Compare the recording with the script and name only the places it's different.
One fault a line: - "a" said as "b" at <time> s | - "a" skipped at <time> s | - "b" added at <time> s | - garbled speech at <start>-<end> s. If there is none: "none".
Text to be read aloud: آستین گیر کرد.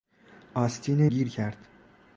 none